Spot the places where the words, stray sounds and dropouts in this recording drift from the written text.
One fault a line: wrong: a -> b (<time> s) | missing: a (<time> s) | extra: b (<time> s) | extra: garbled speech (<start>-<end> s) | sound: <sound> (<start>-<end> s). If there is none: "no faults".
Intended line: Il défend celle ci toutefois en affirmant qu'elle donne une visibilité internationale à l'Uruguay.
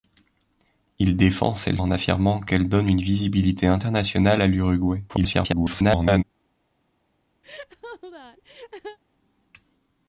missing: ci toutefois (1.8 s)
extra: garbled speech (5.1-6.2 s)
sound: laugh (7.4-9.0 s)